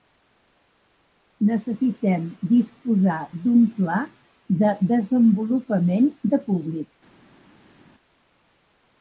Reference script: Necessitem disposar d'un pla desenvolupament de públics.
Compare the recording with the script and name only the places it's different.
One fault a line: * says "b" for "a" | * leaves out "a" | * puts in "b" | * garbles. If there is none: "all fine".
* puts in "de"